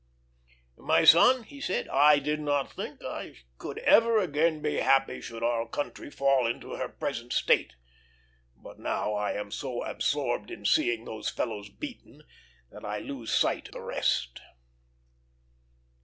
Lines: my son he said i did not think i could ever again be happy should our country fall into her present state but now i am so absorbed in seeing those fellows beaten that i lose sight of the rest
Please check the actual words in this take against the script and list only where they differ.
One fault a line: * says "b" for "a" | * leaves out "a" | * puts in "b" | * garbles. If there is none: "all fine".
* leaves out "of"